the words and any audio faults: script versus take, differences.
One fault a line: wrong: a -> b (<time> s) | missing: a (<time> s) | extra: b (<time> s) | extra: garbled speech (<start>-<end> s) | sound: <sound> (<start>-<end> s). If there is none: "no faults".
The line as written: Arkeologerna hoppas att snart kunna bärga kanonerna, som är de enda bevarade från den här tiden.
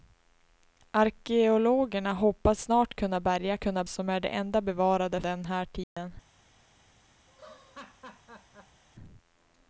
missing: att (2.6 s)
wrong: kanonerna -> kunna (3.6 s)
missing: från (5.2 s)
sound: dropout (5.8-6.0 s)
sound: laugh (7.3-8.8 s)